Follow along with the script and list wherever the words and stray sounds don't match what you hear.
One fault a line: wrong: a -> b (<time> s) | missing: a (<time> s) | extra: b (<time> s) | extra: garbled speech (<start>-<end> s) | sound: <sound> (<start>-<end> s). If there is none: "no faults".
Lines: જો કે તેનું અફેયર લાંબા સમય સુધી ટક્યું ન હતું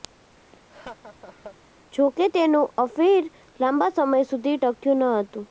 sound: laugh (0.5-1.6 s)